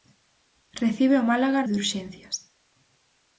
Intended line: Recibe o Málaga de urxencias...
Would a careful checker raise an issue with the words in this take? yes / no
no